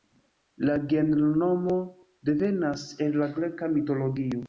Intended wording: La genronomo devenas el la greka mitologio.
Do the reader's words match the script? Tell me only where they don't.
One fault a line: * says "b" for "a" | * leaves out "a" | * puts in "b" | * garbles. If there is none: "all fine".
all fine